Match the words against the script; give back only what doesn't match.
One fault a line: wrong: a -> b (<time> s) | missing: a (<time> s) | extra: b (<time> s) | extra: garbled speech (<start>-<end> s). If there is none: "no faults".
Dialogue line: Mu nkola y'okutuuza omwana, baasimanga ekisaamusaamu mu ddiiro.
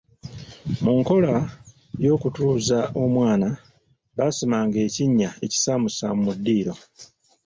extra: ekinnya (4.9 s)